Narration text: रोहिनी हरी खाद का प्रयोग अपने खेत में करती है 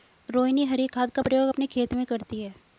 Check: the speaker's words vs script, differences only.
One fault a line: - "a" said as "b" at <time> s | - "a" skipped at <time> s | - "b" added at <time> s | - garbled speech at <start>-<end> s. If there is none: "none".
none